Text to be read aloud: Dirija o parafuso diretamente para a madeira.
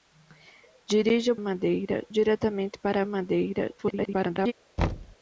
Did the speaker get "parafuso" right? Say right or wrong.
wrong